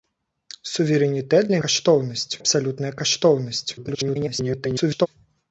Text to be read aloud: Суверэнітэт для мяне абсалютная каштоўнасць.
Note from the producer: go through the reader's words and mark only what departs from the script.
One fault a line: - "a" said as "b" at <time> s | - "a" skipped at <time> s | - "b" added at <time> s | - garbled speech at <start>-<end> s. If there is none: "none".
- "мяне" said as "каштоўнасць" at 1.6 s
- garbled speech at 3.8-5.1 s